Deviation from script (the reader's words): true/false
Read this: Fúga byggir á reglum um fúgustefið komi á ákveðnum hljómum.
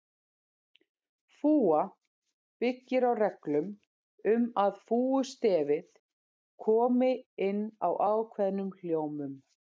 true